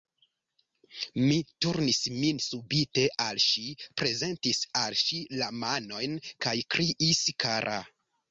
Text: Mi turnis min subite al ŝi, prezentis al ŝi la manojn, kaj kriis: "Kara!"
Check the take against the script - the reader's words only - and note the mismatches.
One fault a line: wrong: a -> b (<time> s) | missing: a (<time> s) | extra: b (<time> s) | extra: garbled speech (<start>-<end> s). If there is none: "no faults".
no faults